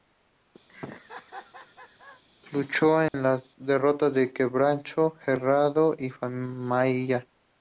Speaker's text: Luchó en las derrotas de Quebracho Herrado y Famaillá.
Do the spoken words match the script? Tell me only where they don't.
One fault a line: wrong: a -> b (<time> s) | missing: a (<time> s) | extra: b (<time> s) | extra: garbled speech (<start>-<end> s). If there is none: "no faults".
no faults